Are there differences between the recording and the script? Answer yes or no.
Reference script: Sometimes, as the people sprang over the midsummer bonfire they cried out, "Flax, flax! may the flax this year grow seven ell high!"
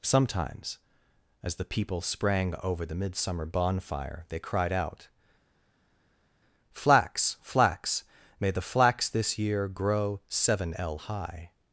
no